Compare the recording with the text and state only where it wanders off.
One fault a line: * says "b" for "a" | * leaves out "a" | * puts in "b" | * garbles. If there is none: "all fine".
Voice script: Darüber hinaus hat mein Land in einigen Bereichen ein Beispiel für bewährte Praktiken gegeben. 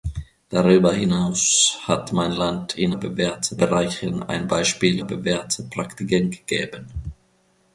* says "bewährte" for "einigen"
* leaves out "für"